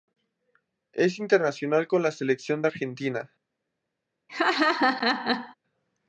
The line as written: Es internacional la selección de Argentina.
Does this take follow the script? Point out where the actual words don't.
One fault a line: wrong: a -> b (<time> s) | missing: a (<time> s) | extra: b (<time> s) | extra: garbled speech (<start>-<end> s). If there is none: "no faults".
extra: con (1.9 s)